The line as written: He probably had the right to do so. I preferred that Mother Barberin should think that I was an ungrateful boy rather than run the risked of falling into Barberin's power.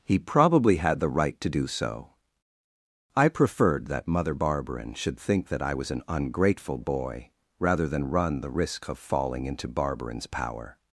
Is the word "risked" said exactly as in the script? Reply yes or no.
no